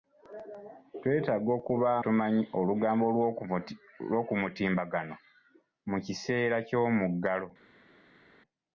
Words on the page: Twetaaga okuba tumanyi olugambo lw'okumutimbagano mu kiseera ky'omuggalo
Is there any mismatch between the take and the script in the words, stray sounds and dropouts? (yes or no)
no